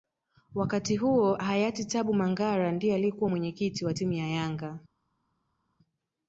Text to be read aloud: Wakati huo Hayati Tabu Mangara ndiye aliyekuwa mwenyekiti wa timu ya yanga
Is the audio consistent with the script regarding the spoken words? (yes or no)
yes